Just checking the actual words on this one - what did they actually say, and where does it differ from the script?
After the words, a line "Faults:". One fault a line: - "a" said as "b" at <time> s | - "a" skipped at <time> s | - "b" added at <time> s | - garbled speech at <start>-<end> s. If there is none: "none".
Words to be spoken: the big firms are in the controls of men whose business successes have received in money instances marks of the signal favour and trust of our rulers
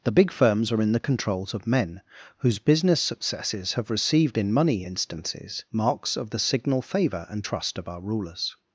the big firms are in the controls of men whose business successes have received in money instances marks of the signal favour and trust of our rulers
Faults:
none